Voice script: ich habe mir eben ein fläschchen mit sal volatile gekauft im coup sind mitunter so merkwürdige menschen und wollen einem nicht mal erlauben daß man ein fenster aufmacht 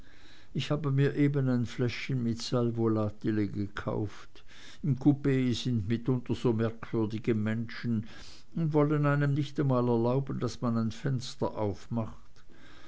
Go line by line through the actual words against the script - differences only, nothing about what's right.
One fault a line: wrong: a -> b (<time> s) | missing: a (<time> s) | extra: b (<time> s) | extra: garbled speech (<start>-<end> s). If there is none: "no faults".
no faults